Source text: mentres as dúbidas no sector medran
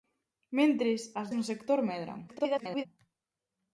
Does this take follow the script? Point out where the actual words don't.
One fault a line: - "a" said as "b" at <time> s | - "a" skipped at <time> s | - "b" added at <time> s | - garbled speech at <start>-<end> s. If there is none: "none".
- "dúbidas" skipped at 1.3 s
- garbled speech at 2.3-2.9 s